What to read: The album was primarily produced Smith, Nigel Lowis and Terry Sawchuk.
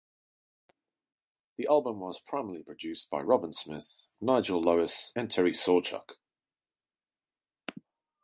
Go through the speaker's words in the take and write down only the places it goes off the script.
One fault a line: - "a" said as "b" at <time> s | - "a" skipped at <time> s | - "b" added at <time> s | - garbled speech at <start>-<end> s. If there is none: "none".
- "by Robin" added at 3.1 s